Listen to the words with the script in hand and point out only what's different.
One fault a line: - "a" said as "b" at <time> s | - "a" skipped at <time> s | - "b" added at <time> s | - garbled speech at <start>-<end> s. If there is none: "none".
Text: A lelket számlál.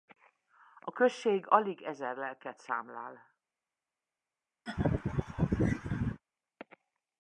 - "község alig ezer" added at 0.9 s